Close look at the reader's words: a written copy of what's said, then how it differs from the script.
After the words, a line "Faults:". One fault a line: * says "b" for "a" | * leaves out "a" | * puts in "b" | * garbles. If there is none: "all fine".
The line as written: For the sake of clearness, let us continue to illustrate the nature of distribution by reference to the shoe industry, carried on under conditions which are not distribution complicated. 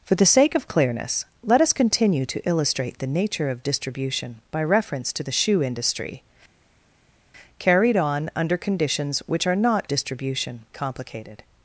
For the sake of clearness, let us continue to illustrate the nature of distribution by reference to the shoe industry, carried on under conditions which are not distribution complicated.
Faults:
all fine